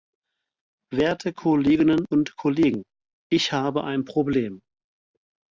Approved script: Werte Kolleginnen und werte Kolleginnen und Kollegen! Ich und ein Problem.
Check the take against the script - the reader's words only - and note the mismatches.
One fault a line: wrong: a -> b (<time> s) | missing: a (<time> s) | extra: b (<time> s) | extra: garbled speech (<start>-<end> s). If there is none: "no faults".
missing: werte Kolleginnen und (2.4 s)
wrong: und -> habe (3.5 s)